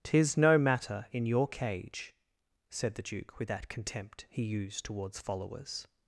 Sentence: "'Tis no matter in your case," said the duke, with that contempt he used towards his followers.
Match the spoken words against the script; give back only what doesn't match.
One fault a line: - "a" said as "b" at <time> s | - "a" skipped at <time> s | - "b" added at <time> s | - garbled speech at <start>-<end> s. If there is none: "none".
- "case" said as "cage" at 1.5 s
- "his" skipped at 5.2 s